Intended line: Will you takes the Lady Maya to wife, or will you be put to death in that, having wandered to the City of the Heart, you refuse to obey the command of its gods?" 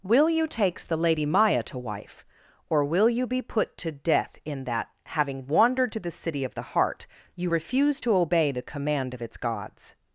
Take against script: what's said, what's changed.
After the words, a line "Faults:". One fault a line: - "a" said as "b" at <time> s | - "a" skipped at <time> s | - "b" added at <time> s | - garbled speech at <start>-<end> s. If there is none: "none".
Will you takes the Lady Maya to wife, or will you be put to death in that, having wandered to the City of the Heart, you refuse to obey the command of its gods?"
Faults:
none